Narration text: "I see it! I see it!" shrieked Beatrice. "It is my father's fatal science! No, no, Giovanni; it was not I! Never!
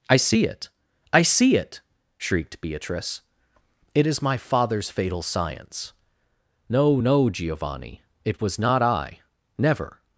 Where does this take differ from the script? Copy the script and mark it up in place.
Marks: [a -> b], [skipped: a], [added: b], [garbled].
"I see it! I see it!" shrieked Beatrice. "It is my father's fatal science! No, no, Giovanni; it was not I! Never!